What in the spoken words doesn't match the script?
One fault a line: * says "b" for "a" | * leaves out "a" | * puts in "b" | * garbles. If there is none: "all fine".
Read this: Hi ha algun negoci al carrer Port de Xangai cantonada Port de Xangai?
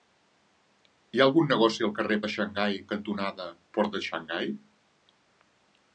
* leaves out "Port"